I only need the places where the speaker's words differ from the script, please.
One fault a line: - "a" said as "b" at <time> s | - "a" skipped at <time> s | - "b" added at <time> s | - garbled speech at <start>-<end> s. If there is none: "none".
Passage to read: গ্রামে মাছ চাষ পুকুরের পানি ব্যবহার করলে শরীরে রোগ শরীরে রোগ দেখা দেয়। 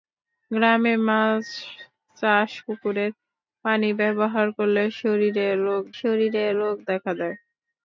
none